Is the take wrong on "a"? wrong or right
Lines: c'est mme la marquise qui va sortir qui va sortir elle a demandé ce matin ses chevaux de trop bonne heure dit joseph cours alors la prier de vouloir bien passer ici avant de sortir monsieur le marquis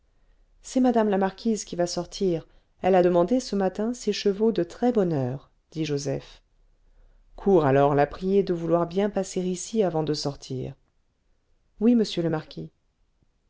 right